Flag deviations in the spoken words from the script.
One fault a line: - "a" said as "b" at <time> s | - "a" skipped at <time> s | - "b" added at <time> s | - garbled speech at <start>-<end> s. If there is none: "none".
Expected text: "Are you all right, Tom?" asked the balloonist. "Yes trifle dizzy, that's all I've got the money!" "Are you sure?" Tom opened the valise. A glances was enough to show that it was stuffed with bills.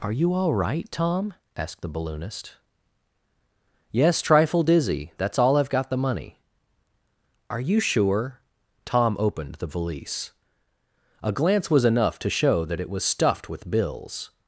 - "glances" said as "glance" at 11.3 s